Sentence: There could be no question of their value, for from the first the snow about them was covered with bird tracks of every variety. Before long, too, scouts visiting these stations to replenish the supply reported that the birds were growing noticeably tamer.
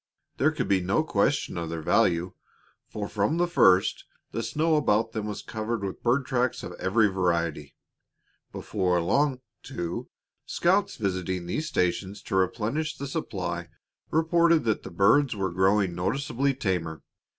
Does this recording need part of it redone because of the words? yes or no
no